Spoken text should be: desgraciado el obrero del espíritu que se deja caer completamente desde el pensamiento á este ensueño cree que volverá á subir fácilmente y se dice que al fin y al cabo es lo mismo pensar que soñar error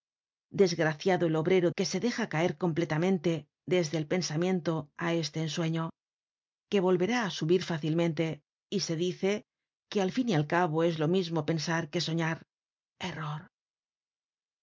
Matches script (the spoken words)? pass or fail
fail